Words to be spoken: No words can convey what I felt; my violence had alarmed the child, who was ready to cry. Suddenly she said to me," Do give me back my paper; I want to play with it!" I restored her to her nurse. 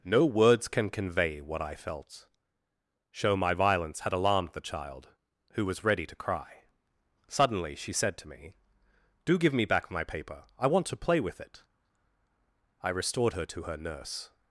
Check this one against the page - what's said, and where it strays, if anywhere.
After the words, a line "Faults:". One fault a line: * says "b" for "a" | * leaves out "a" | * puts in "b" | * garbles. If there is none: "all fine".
No words can convey what I felt; show my violence had alarmed the child, who was ready to cry. Suddenly she said to me," Do give me back my paper; I want to play with it!" I restored her to her nurse.
Faults:
* puts in "show"